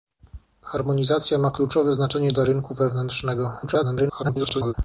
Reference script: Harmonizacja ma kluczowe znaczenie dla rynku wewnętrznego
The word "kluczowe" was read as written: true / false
true